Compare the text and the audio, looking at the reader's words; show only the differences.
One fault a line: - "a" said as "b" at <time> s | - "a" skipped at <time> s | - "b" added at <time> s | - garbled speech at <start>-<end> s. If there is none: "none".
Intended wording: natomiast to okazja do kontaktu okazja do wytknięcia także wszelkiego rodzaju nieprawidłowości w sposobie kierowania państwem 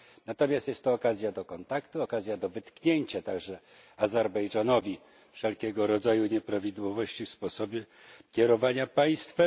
- "jest" added at 0.7 s
- "azerbejdżanowi" added at 4.0 s